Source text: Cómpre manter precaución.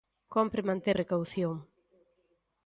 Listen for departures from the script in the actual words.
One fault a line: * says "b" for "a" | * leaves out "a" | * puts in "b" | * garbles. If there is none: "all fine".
all fine